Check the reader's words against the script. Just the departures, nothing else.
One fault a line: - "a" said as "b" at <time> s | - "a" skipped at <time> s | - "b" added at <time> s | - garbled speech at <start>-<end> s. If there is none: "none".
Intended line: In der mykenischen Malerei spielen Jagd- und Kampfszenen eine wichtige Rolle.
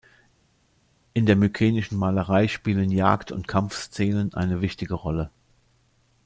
none